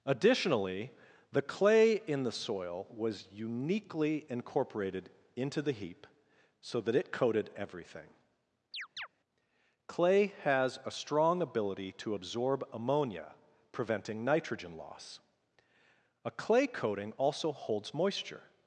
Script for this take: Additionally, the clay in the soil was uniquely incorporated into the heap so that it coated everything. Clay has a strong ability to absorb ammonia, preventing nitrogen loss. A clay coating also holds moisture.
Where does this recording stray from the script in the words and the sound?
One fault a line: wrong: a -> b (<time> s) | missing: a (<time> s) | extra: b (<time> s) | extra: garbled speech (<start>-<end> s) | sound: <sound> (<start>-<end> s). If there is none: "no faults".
sound: chirp (8.7-9.1 s)